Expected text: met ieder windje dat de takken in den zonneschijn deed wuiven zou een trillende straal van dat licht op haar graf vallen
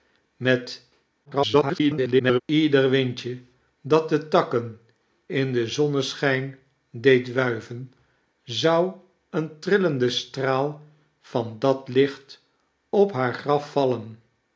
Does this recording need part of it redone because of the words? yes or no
yes